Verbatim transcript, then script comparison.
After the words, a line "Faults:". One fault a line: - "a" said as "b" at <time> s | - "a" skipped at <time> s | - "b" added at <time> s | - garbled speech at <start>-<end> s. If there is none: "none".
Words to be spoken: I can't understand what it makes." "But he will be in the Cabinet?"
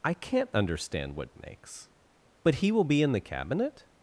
I can't understand what it makes." "But he will be in the Cabinet?"
Faults:
none